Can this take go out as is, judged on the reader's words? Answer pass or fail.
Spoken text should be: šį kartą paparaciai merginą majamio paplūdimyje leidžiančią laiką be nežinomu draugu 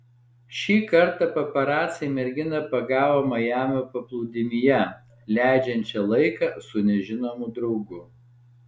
fail